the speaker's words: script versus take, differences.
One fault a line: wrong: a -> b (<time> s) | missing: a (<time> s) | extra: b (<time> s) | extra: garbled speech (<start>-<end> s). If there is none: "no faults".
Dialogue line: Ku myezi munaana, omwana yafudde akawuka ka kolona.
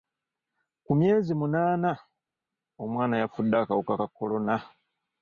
no faults